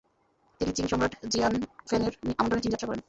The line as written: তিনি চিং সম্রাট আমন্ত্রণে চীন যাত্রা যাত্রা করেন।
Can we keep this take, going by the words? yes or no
no